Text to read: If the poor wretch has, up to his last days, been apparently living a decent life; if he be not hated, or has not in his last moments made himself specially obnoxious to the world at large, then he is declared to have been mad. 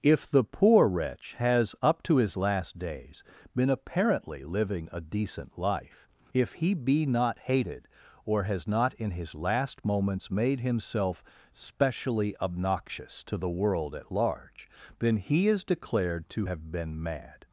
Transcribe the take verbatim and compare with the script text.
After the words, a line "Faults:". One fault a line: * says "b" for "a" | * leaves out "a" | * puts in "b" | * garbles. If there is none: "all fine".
If the poor wretch has, up to his last days, been apparently living a decent life; if he be not hated, or has not in his last moments made himself specially obnoxious to the world at large, then he is declared to have been mad.
Faults:
all fine